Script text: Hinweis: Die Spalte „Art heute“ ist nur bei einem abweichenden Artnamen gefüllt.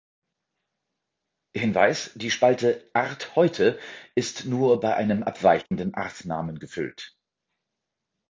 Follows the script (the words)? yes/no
yes